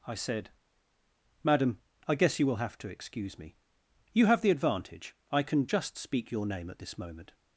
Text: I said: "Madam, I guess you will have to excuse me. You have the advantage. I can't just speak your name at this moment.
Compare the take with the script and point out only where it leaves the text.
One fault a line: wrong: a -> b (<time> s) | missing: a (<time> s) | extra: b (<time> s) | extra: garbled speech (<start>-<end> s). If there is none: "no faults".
wrong: can't -> can (5.4 s)